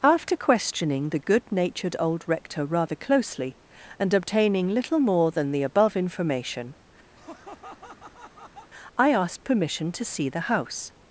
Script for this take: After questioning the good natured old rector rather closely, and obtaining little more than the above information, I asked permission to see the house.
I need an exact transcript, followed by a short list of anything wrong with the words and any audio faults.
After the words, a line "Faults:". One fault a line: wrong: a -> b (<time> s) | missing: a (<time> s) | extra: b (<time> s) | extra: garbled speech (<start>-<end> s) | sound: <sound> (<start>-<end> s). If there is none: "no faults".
After questioning the good natured old rector rather closely, and obtaining little more than the above information, I asked permission to see the house.
Faults:
sound: laugh (7.2-8.7 s)